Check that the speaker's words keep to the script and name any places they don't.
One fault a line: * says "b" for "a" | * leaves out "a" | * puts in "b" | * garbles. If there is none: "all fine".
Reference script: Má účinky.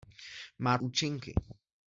all fine